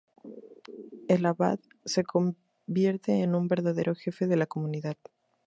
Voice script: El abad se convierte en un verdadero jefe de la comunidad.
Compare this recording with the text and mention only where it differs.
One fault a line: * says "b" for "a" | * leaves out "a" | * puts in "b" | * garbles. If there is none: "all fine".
all fine